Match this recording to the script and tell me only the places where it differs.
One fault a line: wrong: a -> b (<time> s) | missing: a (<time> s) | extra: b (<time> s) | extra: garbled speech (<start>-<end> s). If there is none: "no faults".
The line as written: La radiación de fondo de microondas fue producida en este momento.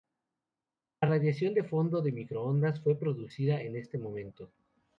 no faults